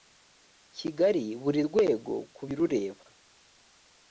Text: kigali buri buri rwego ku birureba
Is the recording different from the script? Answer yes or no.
yes